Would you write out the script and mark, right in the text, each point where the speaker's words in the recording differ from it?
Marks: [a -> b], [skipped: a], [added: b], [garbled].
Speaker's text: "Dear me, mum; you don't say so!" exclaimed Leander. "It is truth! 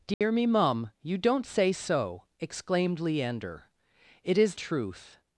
"Dear me, mum; you don't say so!" exclaimed Leander. "It is truth!